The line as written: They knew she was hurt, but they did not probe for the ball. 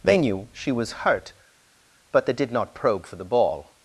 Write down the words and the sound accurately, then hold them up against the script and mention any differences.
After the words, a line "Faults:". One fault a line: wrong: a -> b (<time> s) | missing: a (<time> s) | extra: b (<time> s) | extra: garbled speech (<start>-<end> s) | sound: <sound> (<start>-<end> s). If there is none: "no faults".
They knew she was hurt, but they did not probe for the ball.
Faults:
no faults